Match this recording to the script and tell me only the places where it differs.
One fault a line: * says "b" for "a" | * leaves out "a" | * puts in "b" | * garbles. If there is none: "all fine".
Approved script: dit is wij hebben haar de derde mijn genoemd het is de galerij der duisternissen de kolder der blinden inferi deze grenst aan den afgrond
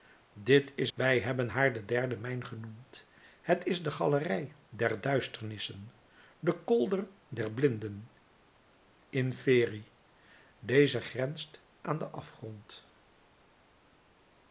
all fine